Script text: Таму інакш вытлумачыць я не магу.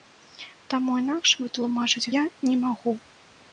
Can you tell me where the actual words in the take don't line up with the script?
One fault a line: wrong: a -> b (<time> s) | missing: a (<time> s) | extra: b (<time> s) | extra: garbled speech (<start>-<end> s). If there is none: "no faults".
no faults